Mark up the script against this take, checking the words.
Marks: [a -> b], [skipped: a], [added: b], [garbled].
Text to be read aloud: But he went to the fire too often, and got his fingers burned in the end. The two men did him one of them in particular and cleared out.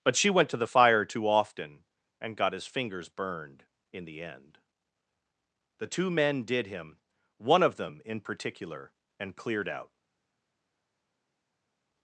But [he -> she] went to the fire too often, and got his fingers burned in the end. The two men did him one of them in particular and cleared out.